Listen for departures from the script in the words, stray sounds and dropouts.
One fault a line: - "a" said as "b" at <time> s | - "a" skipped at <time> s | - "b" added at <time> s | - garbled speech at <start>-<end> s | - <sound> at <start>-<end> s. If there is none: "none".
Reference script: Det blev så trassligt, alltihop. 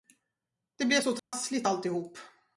- dropout at 1.2-1.3 s